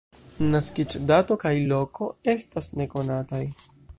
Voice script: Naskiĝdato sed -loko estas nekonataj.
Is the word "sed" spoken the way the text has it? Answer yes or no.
no